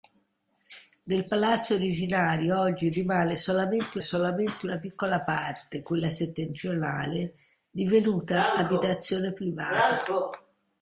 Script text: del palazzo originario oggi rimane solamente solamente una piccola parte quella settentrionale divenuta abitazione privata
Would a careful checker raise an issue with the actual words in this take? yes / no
no